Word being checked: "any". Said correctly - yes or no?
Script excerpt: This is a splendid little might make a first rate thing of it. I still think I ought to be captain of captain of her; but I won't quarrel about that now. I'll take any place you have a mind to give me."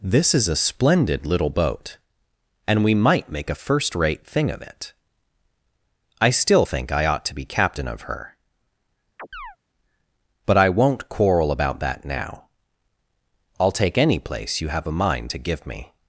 yes